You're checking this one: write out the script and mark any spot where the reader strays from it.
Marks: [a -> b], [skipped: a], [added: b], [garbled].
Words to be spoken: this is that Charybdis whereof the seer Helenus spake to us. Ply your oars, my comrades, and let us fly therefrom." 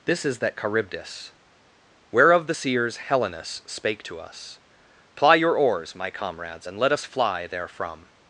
this is that Charybdis whereof the [seer -> seers] Helenus spake to us. Ply your oars, my comrades, and let us fly therefrom."